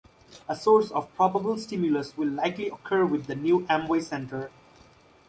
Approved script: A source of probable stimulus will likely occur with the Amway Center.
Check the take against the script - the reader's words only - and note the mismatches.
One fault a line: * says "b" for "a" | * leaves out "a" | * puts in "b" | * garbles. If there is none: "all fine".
* puts in "new"